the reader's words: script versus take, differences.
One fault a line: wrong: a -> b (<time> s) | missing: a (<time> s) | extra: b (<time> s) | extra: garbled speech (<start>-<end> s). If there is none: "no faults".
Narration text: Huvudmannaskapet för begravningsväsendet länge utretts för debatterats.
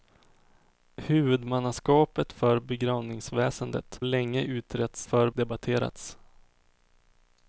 no faults